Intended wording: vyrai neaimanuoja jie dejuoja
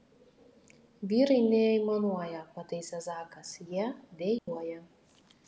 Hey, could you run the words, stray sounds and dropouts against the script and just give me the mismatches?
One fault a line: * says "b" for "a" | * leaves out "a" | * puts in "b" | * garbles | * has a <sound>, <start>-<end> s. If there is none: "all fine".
* puts in "pataisė zakas"
* has a dropout, 4.4-4.5 s